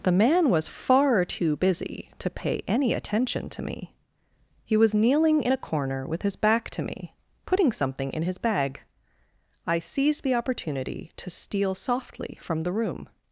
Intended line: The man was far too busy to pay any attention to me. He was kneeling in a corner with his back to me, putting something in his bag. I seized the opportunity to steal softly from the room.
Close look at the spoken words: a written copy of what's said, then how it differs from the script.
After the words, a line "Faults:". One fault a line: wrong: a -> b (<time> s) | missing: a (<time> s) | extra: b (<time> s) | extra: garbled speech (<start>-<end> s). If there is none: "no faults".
The man was far too busy to pay any attention to me. He was kneeling in a corner with his back to me, putting something in his bag. I seized the opportunity to steal softly from the room.
Faults:
no faults